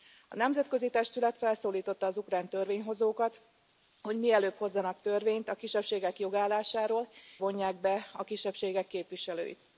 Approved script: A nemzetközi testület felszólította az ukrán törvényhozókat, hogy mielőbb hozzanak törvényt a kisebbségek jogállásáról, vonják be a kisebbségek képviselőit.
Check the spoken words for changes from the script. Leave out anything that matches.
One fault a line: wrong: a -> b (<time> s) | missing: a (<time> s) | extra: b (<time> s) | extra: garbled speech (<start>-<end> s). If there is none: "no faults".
no faults